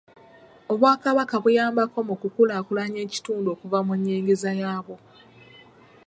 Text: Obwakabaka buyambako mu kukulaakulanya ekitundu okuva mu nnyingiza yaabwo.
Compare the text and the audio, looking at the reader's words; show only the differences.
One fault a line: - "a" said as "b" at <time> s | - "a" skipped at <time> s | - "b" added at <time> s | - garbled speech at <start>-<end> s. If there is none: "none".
none